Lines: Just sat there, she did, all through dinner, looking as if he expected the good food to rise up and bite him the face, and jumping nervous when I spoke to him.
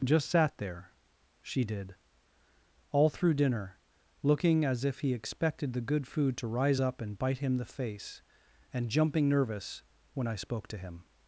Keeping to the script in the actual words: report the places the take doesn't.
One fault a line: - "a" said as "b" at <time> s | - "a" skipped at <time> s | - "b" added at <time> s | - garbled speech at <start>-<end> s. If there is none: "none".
none